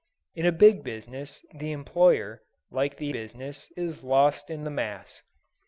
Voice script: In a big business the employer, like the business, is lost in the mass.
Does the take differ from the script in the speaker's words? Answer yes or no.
no